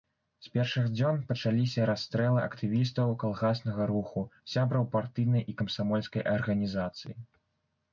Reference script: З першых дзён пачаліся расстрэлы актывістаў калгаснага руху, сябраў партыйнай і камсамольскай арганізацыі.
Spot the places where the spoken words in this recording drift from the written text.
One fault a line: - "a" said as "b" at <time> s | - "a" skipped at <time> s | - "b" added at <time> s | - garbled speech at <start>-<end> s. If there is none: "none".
none